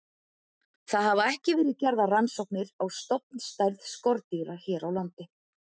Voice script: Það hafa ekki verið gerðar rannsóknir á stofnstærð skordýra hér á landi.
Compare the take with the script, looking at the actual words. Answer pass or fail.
pass